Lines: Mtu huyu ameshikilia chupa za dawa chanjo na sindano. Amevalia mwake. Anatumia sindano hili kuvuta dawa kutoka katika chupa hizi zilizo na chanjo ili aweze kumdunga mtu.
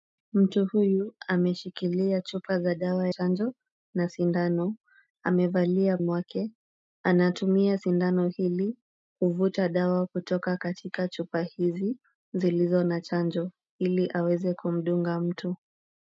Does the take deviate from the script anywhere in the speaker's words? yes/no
no